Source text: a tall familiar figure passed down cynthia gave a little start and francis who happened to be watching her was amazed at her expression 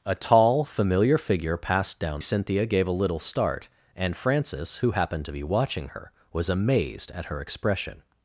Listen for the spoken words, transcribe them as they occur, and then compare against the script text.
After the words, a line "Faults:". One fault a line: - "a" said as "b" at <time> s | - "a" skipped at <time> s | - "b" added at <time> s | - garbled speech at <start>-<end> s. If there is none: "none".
a tall familiar figure passed down cynthia gave a little start and francis who happened to be watching her was amazed at her expression
Faults:
none